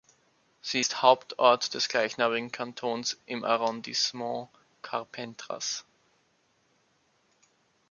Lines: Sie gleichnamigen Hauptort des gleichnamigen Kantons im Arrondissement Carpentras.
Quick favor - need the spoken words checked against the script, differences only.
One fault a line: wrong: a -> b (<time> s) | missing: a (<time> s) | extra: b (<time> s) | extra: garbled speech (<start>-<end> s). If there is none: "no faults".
wrong: gleichnamigen -> ist (0.8 s)